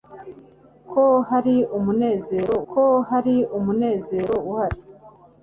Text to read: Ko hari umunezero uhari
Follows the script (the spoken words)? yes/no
no